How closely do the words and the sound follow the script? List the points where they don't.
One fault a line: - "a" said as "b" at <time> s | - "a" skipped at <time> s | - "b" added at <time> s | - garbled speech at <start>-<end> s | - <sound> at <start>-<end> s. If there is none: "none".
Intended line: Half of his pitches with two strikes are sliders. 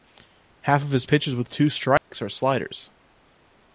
- dropout at 2.0-2.1 s